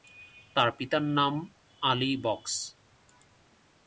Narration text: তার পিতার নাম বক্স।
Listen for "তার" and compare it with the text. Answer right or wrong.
right